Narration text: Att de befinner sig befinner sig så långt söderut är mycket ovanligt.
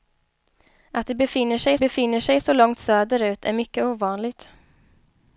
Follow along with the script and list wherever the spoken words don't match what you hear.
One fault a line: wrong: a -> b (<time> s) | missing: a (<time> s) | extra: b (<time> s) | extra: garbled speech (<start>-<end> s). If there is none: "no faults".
no faults